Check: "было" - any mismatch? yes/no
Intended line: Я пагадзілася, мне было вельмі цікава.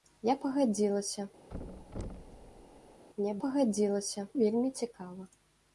yes